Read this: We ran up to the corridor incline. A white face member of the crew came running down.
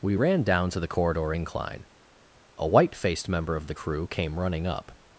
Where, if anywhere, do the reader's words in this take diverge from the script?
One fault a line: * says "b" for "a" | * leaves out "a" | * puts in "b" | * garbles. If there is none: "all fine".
* says "down" for "up"
* says "faced" for "face"
* says "up" for "down"